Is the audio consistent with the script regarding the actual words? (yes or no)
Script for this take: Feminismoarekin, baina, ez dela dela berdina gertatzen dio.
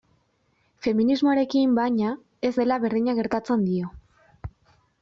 no